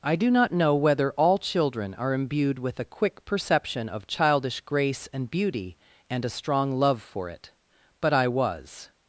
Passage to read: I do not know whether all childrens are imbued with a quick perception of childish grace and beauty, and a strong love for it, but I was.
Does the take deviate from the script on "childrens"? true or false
true